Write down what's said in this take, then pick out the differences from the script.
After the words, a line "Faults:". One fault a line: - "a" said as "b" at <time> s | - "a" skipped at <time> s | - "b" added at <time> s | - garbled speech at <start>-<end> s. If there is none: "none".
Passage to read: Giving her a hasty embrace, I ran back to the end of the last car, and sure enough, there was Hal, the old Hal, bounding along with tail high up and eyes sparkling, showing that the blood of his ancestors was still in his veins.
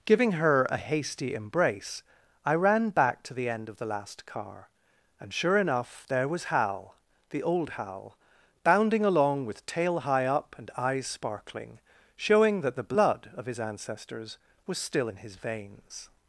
Giving her a hasty embrace, I ran back to the end of the last car, and sure enough, there was Hal, the old Hal, bounding along with tail high up and eyes sparkling, showing that the blood of his ancestors was still in his veins.
Faults:
none